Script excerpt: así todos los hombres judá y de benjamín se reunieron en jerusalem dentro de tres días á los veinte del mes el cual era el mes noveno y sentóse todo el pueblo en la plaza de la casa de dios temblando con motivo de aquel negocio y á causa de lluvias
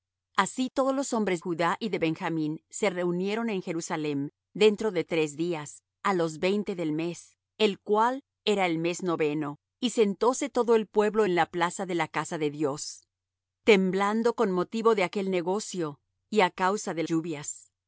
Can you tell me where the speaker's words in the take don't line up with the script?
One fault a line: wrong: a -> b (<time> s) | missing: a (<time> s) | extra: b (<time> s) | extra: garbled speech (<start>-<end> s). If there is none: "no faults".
no faults